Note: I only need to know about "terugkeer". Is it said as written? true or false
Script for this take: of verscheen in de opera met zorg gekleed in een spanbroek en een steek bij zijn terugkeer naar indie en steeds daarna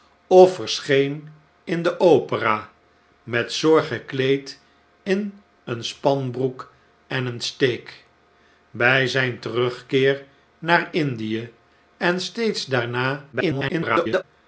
true